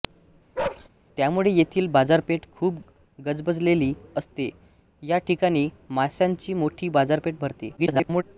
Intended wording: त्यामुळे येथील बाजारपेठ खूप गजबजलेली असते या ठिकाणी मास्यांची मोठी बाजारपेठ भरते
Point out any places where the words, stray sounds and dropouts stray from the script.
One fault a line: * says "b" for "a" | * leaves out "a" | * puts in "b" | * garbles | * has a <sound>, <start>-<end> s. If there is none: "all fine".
* has a bark, 0.6-0.9 s
* garbles